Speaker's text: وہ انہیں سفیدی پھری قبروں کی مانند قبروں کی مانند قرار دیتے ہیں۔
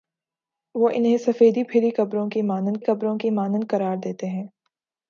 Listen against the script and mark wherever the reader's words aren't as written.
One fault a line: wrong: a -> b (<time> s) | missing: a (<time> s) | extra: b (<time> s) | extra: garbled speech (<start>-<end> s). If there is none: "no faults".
no faults